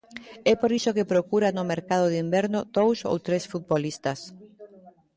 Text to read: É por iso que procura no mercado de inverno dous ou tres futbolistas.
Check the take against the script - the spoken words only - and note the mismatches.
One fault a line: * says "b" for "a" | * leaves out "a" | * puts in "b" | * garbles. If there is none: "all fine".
all fine